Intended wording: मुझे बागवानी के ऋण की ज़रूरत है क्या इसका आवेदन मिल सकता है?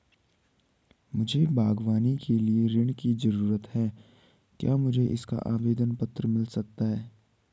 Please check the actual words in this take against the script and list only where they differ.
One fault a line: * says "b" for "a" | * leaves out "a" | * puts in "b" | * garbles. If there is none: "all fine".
* puts in "लिए"
* puts in "मुझे"
* puts in "पत्र"